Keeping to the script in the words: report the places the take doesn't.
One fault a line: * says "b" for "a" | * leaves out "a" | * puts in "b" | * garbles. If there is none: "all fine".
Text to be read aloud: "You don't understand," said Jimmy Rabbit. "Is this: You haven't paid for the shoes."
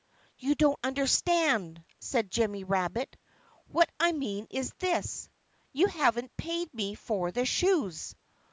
* puts in "What I mean"
* puts in "me"